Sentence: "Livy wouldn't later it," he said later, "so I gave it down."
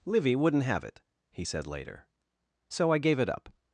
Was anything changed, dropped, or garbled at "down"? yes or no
yes